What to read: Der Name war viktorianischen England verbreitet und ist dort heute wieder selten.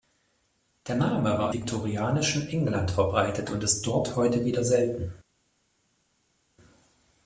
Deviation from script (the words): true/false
false